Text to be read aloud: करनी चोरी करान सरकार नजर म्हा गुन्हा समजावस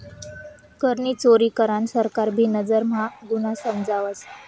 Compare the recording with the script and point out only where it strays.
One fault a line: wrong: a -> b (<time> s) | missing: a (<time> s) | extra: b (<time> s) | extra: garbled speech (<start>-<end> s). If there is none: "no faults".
extra: भी (2.3 s)